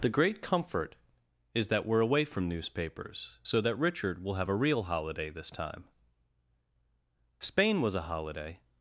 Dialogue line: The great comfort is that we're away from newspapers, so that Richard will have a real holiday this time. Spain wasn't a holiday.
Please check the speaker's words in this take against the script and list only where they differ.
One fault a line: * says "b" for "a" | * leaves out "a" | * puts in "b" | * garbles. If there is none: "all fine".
* says "was" for "wasn't"